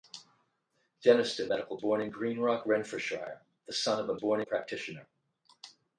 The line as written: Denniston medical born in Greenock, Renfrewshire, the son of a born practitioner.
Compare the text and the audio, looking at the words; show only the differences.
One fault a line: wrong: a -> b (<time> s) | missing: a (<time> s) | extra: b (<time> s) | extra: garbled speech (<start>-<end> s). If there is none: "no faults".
no faults